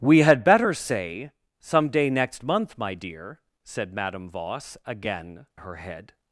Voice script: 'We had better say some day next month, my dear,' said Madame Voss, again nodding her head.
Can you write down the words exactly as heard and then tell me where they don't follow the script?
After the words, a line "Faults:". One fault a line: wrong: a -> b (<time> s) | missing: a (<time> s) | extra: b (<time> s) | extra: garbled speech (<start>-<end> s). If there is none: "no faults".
'We had better say some day next month, my dear,' said Madame Voss, again her head.
Faults:
missing: nodding (5.5 s)